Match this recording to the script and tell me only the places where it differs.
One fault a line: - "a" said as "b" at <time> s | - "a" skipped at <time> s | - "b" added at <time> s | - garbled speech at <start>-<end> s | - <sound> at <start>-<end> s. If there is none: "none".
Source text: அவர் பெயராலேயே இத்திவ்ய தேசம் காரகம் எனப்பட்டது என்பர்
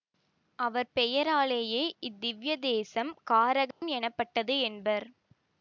- dropout at 3.7-3.8 s